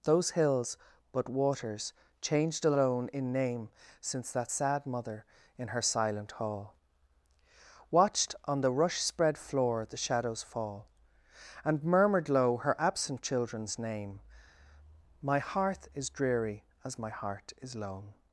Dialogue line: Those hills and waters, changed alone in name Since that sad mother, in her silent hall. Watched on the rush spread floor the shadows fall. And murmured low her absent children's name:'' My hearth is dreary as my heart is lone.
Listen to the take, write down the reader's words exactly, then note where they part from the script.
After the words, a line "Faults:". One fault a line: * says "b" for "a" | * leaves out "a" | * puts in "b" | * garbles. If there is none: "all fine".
Those hills but waters, changed alone in name Since that sad mother, in her silent hall. Watched on the rush spread floor the shadows fall. And murmured low her absent children's name:'' My hearth is dreary as my heart is lone.
Faults:
* says "but" for "and"